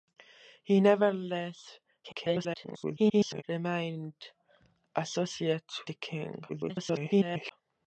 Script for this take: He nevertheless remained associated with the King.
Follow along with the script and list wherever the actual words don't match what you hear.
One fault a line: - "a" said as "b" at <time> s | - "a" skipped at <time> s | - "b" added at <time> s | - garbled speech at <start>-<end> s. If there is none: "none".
- garbled speech at 2.0-3.4 s
- "with" skipped at 5.6 s
- garbled speech at 6.5-7.5 s